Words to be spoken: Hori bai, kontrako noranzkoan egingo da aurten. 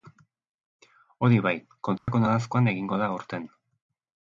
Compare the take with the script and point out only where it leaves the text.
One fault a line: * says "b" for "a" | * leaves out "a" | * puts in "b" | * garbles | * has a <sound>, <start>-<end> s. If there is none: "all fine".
* has a dropout, 2.0-2.1 s